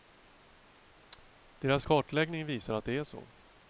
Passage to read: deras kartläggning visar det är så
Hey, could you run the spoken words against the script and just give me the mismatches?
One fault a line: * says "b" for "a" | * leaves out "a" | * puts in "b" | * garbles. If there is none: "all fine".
* puts in "att"